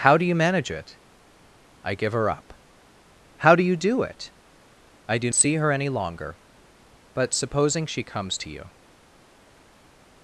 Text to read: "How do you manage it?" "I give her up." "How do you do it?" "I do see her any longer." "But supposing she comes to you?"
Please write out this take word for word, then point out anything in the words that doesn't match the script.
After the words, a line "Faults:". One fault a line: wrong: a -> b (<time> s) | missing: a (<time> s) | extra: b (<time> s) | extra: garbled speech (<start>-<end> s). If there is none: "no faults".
"How do you manage it?" "I give her up." "How do you do it?" "I do see her any longer." "But supposing she comes to you?"
Faults:
no faults